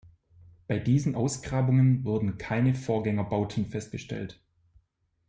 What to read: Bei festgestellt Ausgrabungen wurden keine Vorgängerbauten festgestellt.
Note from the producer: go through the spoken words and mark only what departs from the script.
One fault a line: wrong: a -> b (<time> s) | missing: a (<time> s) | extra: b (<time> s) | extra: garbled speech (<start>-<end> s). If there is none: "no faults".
wrong: festgestellt -> diesen (0.8 s)